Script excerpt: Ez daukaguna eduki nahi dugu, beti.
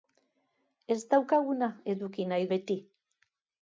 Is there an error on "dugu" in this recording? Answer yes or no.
yes